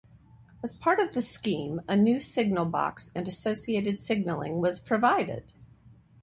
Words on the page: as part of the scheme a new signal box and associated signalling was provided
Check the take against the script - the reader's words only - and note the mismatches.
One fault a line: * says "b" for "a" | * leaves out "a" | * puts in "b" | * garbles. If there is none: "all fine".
all fine